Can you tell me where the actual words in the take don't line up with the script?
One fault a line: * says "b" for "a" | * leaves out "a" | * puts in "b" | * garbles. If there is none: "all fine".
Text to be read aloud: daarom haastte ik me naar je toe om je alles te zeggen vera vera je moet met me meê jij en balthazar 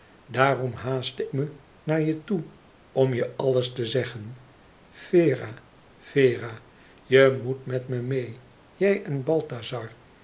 * leaves out "ik"